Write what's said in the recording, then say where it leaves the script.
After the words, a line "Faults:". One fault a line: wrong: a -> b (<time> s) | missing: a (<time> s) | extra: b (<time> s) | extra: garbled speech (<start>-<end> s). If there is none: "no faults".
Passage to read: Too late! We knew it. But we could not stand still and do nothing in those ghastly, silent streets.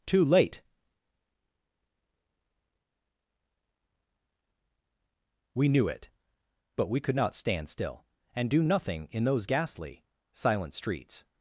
Too late! We knew it. But we could not stand still and do nothing in those ghastly, silent streets.
Faults:
no faults